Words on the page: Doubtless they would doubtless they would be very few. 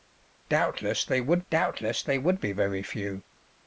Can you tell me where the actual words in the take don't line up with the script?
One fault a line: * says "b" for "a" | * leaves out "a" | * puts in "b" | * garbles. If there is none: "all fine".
all fine